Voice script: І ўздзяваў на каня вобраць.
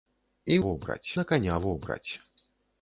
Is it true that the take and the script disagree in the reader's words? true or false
true